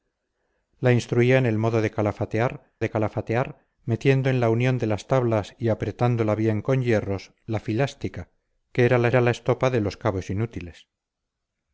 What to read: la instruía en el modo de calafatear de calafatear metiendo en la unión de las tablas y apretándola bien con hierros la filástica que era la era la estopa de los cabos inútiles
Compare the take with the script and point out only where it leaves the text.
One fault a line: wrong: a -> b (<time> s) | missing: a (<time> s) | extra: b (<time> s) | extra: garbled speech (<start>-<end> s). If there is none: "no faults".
no faults